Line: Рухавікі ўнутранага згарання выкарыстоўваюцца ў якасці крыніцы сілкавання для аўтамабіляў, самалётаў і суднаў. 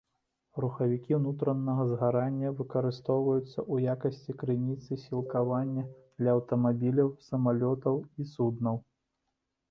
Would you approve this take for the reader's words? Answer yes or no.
yes